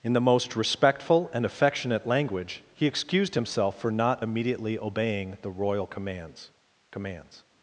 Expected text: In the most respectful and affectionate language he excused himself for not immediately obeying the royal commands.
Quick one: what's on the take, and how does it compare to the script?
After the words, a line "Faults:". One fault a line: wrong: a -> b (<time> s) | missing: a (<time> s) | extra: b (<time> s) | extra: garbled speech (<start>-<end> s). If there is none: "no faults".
In the most respectful and affectionate language he excused himself for not immediately obeying the royal commands commands.
Faults:
extra: commands (6.9 s)